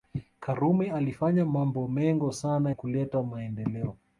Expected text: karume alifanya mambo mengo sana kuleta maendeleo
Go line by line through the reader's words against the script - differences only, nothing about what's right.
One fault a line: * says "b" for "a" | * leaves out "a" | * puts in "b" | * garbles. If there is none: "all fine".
all fine